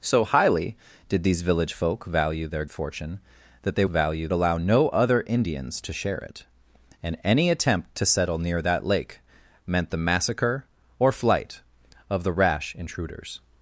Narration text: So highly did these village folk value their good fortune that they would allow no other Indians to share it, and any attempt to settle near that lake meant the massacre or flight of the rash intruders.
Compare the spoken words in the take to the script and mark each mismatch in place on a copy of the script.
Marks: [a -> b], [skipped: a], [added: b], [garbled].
So highly did these village folk value their [skipped: good] fortune that they [would -> value] allow no other Indians to share it, and any attempt to settle near that lake meant the massacre or flight of the rash intruders.